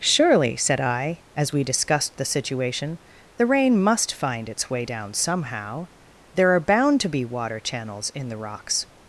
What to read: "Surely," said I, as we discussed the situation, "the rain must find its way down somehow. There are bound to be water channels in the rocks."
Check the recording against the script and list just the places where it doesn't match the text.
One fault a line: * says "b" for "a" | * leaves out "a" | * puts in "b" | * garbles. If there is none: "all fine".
all fine